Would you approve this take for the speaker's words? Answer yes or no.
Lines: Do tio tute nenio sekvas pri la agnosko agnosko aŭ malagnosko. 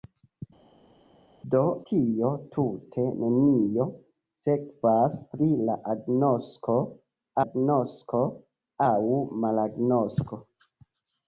yes